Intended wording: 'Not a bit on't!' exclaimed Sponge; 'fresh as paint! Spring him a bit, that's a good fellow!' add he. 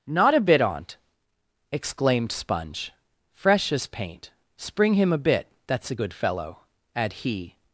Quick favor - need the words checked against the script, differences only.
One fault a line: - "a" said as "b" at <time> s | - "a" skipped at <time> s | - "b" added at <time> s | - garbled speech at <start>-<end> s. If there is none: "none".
none